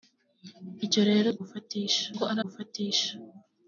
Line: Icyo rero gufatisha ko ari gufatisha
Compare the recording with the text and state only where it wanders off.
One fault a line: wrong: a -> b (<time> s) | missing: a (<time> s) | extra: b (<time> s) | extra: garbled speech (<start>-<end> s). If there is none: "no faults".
no faults